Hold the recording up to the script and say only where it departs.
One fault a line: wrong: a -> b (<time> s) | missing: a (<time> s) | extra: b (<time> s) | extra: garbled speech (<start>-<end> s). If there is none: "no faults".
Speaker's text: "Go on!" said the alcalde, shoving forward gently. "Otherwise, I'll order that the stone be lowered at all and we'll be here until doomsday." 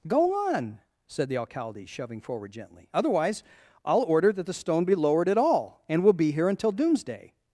no faults